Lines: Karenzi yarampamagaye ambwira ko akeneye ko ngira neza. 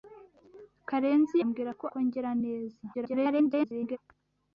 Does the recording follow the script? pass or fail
fail